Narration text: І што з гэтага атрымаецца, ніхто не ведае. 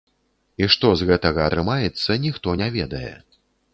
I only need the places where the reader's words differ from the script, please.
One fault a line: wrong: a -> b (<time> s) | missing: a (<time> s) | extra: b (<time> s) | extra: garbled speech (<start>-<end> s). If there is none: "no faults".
no faults